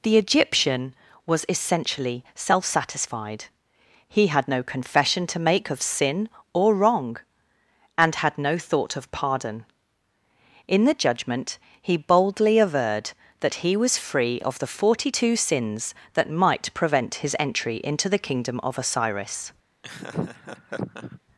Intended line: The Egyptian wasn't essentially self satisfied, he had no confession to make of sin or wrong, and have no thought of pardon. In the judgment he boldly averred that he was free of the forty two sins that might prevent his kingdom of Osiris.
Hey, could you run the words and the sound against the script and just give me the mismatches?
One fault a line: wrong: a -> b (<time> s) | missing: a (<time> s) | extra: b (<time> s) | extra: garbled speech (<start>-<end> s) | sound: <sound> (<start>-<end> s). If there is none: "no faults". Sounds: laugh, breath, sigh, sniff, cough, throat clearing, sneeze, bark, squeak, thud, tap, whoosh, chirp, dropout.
wrong: wasn't -> was (1.3 s)
wrong: have -> had (8.1 s)
extra: entry into the (17.4 s)
sound: laugh (19.8-21.2 s)